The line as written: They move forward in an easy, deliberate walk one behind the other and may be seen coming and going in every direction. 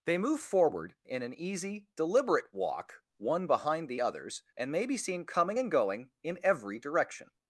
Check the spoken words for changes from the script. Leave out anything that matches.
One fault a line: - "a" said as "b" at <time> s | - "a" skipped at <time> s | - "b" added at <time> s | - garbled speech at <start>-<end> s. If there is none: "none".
- "other" said as "others" at 4.0 s